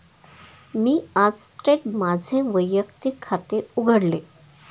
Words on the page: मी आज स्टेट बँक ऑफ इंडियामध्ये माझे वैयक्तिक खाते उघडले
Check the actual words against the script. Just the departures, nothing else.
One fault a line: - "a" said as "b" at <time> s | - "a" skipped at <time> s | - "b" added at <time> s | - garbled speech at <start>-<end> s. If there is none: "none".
- "बँक ऑफ इंडियामध्ये" skipped at 1.9 s